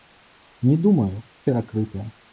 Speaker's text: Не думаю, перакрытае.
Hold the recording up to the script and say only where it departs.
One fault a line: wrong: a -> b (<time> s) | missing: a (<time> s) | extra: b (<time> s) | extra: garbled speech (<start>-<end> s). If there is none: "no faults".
no faults